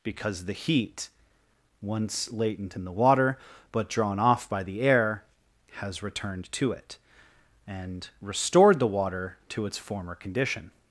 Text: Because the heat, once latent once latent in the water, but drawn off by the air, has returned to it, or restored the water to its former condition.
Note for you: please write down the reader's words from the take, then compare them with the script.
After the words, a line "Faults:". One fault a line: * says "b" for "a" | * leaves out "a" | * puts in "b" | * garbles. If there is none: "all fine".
Because the heat, once latent in the water, but drawn off by the air, has returned to it, and restored the water to its former condition.
Faults:
* leaves out "once latent"
* says "and" for "or"